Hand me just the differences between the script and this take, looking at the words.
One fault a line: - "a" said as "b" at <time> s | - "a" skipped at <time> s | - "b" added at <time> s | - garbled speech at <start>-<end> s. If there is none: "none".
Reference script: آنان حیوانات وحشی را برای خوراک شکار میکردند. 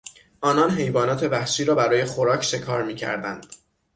none